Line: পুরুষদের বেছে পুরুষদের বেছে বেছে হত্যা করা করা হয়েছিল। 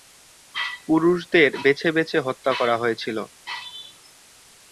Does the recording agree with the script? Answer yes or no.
no